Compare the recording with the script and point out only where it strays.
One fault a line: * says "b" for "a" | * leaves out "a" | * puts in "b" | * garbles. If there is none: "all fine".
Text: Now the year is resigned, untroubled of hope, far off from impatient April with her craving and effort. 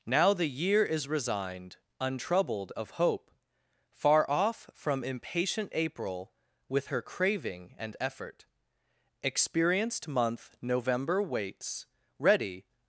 * puts in "Experienced month November waits ready"